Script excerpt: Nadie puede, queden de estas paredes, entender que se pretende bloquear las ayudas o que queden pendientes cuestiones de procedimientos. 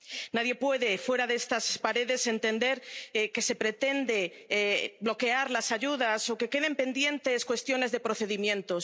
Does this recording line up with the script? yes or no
no